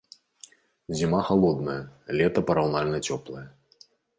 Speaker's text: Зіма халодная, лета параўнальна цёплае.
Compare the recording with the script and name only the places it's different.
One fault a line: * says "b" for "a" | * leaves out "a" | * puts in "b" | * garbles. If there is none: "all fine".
all fine